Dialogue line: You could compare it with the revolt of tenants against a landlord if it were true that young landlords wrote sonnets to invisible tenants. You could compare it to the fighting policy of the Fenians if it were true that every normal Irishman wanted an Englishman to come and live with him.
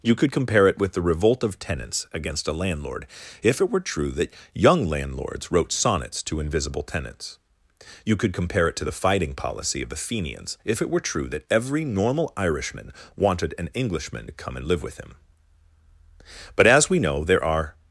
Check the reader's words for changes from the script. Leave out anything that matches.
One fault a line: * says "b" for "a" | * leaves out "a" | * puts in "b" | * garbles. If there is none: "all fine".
* puts in "But as we know there are"